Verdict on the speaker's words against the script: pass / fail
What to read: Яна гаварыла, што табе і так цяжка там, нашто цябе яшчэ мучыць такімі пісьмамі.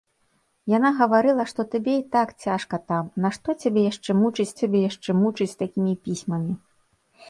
fail